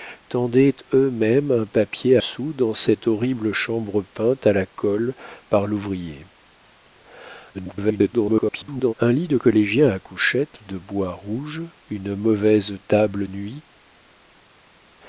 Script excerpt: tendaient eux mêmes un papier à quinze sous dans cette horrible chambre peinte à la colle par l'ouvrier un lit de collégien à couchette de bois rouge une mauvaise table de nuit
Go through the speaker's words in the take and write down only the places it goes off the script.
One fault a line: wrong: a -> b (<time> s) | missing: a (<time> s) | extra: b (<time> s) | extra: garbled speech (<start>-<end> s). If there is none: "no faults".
missing: à quinze (2.2 s)
extra: garbled speech (7.5-8.9 s)
missing: de (13.3 s)